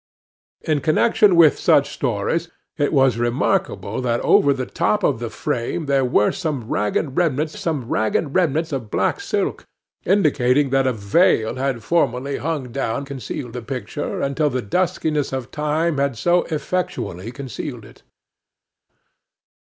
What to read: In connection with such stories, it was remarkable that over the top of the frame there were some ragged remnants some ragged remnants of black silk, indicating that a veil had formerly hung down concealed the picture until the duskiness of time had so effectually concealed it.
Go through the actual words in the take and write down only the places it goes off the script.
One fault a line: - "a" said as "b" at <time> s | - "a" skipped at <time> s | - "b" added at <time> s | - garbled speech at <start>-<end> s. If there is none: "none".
none